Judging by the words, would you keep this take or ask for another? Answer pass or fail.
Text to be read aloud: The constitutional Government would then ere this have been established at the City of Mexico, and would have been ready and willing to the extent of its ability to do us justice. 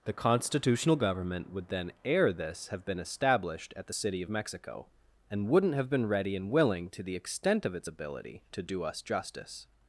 fail